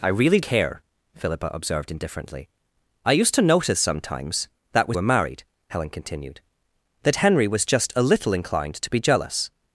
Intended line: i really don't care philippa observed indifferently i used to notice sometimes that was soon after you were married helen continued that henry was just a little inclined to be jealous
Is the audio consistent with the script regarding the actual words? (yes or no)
no